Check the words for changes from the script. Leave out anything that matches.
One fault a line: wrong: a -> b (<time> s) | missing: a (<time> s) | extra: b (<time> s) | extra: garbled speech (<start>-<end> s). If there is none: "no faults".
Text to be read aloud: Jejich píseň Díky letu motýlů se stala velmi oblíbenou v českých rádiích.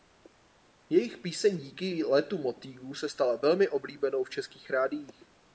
no faults